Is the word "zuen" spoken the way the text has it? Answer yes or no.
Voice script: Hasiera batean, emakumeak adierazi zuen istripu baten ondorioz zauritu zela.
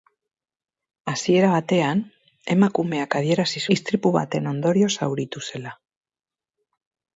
no